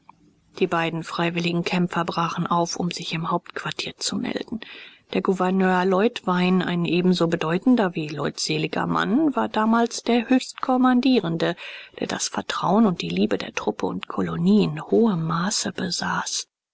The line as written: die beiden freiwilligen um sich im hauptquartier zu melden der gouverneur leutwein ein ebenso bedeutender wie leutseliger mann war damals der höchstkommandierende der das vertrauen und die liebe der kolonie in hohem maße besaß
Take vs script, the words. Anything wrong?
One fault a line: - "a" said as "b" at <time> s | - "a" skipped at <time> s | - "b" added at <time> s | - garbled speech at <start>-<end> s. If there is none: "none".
- "kämpfer brachen auf" added at 1.6 s
- "truppe und" added at 13.5 s